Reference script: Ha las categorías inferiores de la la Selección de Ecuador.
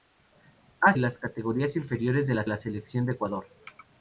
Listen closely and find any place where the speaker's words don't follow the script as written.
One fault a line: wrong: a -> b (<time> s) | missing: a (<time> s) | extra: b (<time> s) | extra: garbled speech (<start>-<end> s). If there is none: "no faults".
no faults